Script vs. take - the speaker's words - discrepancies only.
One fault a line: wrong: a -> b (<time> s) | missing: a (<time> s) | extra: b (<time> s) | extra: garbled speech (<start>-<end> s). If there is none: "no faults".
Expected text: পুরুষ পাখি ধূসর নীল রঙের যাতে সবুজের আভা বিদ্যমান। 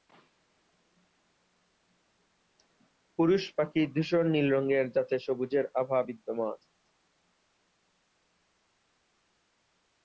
no faults